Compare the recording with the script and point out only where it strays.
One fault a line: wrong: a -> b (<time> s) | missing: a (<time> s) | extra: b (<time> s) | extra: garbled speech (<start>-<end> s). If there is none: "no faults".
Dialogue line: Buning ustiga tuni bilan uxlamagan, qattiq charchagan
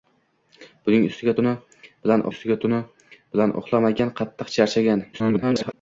extra: ustiga tuni bilan (2.3 s)
extra: garbled speech (5.1-5.7 s)